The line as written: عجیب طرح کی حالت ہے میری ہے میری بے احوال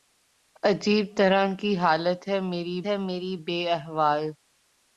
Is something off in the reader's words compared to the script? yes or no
no